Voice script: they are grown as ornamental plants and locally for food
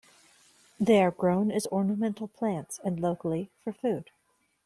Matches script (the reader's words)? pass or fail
pass